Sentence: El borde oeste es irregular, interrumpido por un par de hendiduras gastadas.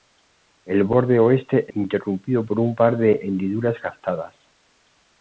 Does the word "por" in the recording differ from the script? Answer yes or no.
no